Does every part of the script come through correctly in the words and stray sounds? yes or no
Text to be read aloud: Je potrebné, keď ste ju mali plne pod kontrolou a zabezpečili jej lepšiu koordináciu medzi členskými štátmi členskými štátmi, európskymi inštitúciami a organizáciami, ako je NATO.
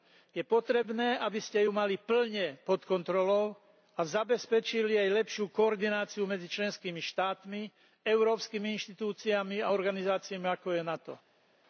no